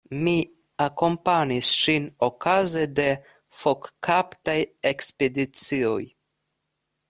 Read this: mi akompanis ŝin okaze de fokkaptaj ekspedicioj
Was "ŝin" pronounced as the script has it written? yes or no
yes